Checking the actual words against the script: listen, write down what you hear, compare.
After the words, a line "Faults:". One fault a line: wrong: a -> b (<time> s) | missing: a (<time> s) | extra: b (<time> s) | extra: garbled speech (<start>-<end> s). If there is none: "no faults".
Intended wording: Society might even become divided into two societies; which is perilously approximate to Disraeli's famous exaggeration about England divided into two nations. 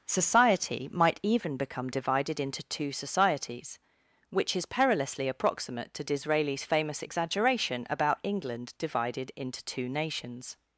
Society might even become divided into two societies; which is perilously approximate to Disraeli's famous exaggeration about England divided into two nations.
Faults:
no faults